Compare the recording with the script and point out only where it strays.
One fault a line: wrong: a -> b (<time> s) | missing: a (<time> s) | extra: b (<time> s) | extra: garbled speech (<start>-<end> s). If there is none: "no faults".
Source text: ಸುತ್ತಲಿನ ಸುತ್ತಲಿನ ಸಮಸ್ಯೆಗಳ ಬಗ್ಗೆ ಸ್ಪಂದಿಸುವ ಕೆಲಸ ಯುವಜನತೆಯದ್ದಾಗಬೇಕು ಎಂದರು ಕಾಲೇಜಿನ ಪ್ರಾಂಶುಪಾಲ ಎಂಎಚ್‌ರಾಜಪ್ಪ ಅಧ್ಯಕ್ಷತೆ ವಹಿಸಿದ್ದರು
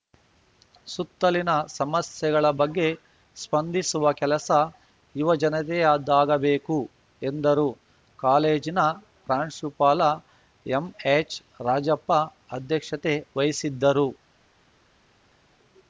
missing: ಸುತ್ತಲಿನ (1.5 s)